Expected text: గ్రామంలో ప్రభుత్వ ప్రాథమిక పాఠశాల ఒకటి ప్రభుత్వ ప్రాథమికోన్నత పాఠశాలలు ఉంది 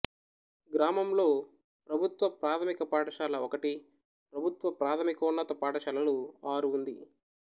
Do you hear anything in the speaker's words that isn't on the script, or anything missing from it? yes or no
yes